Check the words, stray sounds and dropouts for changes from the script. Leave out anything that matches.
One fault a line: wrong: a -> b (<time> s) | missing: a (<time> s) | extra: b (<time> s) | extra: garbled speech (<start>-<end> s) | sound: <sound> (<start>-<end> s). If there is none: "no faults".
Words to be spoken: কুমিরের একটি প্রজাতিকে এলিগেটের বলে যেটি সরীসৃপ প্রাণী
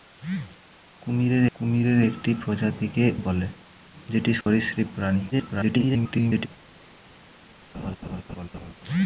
extra: কুমিরের (1.5 s)
missing: এলিগেটের (3.0 s)
sound: dropout (4.4-4.5 s)
extra: garbled speech (5.3-6.5 s)
sound: laugh (7.7-8.7 s)